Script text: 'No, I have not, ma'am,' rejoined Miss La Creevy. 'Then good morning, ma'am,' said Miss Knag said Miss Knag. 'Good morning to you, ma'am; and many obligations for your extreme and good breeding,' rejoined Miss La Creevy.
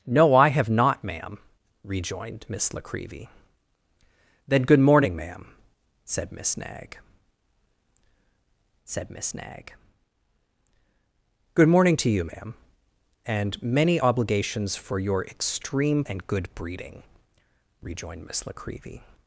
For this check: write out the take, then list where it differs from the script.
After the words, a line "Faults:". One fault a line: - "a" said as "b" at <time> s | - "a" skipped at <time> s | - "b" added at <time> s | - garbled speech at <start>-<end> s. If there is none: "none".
'No, I have not, ma'am,' rejoined Miss La Creevy. 'Then good morning, ma'am,' said Miss Knag said Miss Knag. 'Good morning to you, ma'am; and many obligations for your extreme and good breeding,' rejoined Miss La Creevy.
Faults:
none